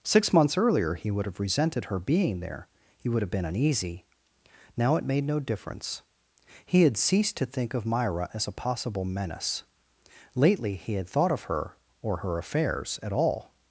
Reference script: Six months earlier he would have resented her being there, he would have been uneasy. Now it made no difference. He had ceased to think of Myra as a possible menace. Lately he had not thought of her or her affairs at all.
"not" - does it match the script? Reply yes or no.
no